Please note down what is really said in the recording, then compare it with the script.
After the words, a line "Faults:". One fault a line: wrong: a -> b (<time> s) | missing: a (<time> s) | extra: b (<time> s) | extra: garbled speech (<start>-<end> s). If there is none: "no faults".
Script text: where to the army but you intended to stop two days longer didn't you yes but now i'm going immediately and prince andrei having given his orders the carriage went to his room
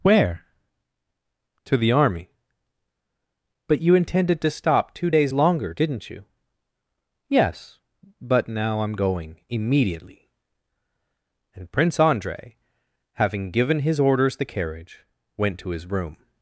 where to the army but you intended to stop two days longer didn't you yes but now i'm going immediately and prince andrei having given his orders the carriage went to his room
Faults:
no faults